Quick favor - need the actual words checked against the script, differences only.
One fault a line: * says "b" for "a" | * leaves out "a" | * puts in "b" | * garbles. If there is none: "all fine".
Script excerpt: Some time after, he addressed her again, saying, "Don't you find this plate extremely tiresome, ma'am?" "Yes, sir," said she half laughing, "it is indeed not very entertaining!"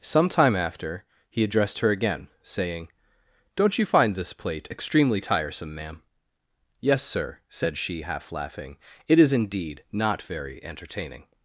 all fine